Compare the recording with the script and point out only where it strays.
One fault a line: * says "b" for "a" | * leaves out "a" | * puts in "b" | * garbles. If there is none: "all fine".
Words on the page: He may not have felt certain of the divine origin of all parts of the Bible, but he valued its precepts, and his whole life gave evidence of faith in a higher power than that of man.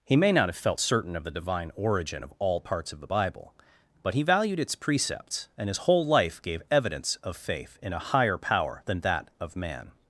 all fine